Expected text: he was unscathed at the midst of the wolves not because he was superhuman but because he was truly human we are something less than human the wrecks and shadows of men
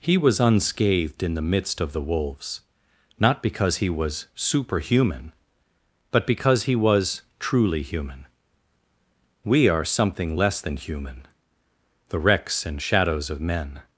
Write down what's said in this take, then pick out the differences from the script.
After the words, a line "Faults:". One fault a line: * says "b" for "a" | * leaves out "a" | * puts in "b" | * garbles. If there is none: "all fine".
he was unscathed in the midst of the wolves not because he was superhuman but because he was truly human we are something less than human the wrecks and shadows of men
Faults:
* says "in" for "at"